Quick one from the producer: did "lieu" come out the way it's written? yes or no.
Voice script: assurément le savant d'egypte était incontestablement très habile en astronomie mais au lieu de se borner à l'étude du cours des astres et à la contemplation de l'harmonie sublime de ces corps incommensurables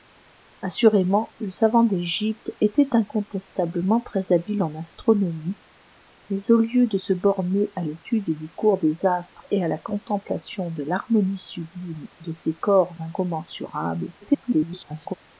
yes